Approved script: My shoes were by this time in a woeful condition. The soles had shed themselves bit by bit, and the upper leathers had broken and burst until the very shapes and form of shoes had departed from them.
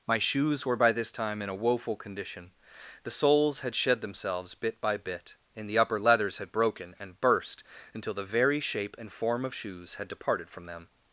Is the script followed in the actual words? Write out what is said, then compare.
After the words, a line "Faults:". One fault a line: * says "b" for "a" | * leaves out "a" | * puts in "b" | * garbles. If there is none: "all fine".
My shoes were by this time in a woeful condition. The soles had shed themselves bit by bit, and the upper leathers had broken and burst until the very shape and form of shoes had departed from them.
Faults:
* says "shape" for "shapes"